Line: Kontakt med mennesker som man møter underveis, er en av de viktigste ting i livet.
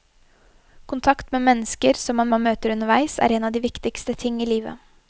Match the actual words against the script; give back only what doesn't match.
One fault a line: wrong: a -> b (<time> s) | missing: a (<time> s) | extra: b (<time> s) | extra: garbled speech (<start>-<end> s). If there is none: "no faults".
extra: man (2.3 s)